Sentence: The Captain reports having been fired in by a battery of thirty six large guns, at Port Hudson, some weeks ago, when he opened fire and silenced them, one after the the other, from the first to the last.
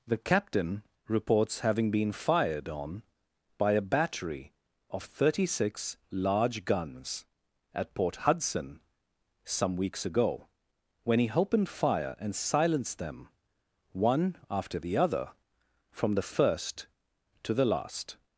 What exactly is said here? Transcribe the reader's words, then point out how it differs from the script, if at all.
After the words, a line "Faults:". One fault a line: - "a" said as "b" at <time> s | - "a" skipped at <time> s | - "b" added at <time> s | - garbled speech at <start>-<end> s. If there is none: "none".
The Captain reports having been fired on by a battery of thirty six large guns, at Port Hudson, some weeks ago, when he opened fire and silenced them, one after the other, from the first to the last.
Faults:
- "in" said as "on" at 2.7 s
- "the" skipped at 15.0 s